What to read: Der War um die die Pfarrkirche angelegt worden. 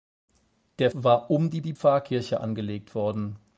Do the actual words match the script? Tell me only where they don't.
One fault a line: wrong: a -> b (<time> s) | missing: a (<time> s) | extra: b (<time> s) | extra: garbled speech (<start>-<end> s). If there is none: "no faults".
no faults